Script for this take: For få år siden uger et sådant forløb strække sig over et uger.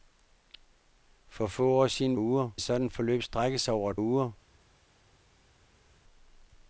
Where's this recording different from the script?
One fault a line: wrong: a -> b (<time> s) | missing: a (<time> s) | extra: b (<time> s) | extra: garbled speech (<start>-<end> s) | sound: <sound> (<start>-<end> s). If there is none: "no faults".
no faults